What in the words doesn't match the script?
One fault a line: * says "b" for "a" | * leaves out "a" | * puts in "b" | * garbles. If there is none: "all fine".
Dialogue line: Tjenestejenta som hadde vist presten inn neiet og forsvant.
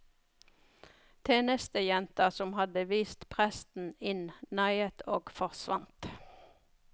all fine